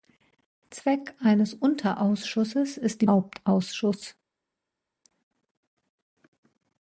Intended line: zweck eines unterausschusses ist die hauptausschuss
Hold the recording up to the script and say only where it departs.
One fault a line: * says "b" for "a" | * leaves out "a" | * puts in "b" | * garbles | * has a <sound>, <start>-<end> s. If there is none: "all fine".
all fine